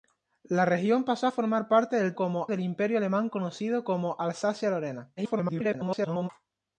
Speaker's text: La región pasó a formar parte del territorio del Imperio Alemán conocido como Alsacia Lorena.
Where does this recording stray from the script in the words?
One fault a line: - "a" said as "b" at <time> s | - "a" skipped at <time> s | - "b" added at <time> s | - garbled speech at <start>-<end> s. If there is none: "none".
- "territorio" said as "como" at 2.1 s
- garbled speech at 5.2-6.3 s